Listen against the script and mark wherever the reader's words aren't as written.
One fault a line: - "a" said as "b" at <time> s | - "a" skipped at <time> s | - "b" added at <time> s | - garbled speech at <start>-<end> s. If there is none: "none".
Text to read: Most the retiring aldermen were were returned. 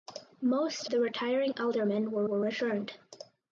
none